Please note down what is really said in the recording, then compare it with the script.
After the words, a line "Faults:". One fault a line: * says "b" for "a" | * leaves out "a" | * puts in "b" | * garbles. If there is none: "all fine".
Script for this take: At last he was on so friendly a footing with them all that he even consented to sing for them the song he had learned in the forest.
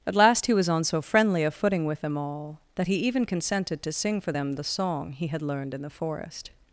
At last he was on so friendly a footing with them all that he even consented to sing for them the song he had learned in the forest.
Faults:
all fine